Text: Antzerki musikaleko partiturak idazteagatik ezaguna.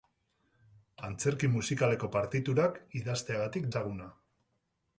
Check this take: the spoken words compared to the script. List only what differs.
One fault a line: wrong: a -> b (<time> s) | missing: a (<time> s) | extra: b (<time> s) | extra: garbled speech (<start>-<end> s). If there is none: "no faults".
no faults